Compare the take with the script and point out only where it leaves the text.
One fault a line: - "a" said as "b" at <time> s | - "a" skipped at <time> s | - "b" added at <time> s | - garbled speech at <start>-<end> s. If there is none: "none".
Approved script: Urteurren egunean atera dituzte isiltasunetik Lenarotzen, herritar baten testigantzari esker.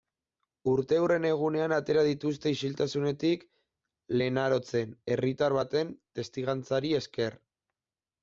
none